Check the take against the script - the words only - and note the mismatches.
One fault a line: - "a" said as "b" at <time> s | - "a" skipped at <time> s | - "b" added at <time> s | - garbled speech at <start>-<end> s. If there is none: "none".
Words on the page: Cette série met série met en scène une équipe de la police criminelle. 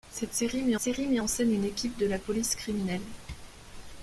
none